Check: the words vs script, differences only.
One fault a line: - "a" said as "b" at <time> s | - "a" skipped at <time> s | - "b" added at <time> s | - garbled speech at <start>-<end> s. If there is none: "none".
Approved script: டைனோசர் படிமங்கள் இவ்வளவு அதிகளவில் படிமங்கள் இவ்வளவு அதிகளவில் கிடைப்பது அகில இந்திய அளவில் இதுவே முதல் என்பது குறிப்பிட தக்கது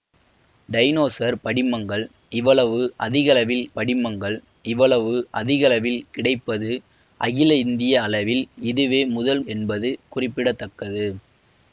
none